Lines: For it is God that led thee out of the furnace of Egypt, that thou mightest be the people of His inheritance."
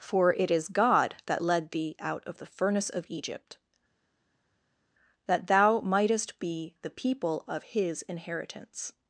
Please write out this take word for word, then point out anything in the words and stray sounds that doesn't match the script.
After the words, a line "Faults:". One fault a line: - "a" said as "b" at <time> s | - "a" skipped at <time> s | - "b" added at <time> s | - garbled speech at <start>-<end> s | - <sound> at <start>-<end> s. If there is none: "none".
For it is God that led thee out of the furnace of Egypt, that thou mightest be the people of His inheritance."
Faults:
none